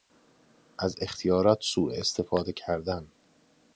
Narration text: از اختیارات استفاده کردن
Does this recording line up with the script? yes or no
no